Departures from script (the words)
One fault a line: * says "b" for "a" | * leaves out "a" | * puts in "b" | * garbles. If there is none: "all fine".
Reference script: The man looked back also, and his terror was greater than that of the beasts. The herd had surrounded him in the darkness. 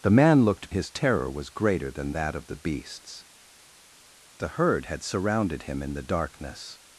* leaves out "back also and"